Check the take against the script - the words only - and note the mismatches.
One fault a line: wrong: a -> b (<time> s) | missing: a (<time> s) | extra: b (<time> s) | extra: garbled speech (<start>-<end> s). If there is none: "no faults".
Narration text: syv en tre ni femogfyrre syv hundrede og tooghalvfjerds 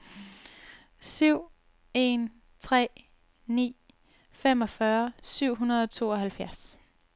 no faults